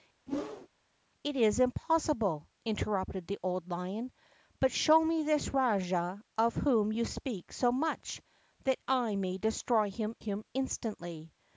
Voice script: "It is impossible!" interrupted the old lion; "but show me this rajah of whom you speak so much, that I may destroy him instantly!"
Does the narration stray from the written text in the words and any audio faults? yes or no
yes